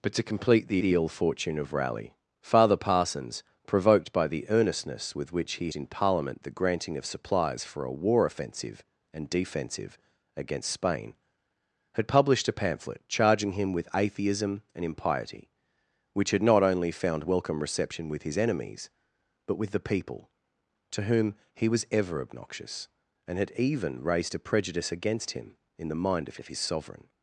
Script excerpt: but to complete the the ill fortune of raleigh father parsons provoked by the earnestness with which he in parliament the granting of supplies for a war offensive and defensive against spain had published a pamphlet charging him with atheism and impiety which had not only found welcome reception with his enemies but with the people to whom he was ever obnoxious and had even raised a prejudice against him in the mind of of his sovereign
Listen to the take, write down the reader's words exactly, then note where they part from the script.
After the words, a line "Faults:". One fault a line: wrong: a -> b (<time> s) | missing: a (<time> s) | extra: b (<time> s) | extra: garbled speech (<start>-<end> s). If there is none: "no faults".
but to complete the the ill fortune of raleigh father parsons provoked by the earnestness with which he in parliament the granting of supplies for a war offensive and defensive against spain had published a pamphlet charging him with atheism and impiety which had not only found welcome reception with his enemies but with the people to whom he was ever obnoxious and had even raised a prejudice against him in the mind of of his sovereign
Faults:
no faults